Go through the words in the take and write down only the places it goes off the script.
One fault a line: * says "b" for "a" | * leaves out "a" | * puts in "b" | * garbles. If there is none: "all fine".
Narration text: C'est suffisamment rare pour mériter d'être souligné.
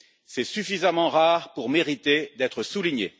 all fine